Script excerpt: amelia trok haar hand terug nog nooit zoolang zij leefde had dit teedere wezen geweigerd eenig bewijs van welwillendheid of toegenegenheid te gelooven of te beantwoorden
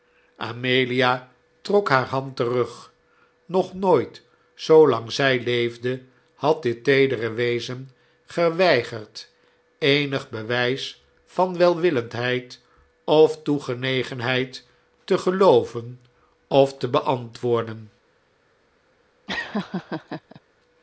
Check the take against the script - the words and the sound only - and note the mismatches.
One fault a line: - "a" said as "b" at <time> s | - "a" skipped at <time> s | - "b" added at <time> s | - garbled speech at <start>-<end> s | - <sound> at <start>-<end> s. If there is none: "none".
- laugh at 19.3-20.4 s